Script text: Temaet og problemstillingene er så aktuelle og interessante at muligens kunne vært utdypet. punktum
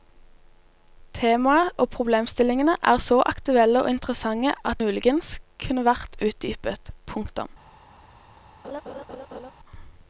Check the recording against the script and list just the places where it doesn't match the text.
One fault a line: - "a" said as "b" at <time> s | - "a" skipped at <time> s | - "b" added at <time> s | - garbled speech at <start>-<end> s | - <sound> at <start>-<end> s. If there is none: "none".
- laugh at 8.6-9.5 s